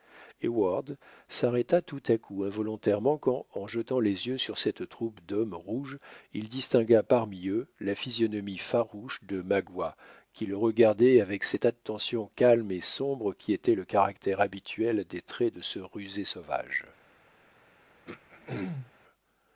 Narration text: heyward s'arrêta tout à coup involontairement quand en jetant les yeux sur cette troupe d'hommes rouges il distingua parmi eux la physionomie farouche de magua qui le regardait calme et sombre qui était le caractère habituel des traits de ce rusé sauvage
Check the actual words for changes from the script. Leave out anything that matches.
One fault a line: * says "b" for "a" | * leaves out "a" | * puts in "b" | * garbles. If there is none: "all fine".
* puts in "avec cette attention"